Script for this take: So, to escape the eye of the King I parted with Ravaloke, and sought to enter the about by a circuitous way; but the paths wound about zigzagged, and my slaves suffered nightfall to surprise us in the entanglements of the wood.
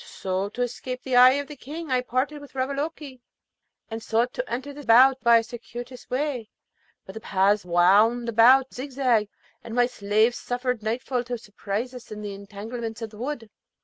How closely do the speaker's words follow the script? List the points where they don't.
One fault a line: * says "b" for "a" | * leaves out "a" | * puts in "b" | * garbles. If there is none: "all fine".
all fine